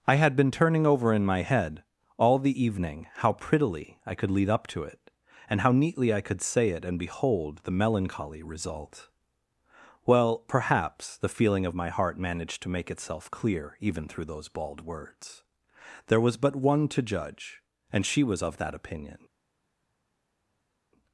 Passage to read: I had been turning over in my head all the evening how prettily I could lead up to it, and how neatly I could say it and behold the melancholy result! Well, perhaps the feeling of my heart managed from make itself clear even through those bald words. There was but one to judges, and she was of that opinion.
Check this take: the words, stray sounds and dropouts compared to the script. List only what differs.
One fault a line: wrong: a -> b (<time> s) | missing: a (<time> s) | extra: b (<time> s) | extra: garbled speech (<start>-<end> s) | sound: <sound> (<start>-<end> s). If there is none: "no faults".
wrong: from -> to (12.6 s)
wrong: judges -> judge (17.0 s)